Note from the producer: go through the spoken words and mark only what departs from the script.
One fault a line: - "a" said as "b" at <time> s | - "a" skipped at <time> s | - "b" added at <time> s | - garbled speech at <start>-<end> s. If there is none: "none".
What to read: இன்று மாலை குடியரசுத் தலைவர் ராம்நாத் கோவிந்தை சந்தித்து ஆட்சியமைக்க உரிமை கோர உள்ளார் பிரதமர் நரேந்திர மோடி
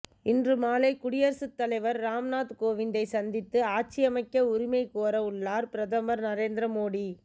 none